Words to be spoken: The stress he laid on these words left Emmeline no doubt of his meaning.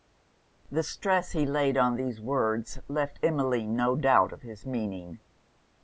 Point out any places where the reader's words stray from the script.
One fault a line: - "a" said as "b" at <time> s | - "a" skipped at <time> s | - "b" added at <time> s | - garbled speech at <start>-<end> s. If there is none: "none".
none